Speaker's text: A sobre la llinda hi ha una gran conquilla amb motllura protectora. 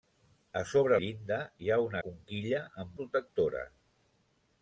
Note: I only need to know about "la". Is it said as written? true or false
false